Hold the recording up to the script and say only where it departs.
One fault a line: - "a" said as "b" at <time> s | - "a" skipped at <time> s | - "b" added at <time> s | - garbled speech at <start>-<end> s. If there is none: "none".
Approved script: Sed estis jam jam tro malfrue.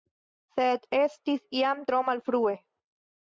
- "jam" skipped at 1.9 s